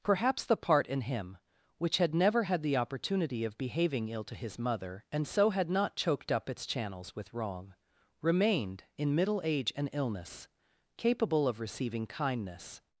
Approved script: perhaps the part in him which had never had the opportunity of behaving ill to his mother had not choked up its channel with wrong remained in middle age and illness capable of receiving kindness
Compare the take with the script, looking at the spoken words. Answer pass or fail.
fail